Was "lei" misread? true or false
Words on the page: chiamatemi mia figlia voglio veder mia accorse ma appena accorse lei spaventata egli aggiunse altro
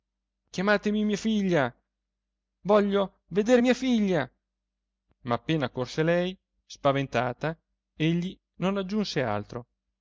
false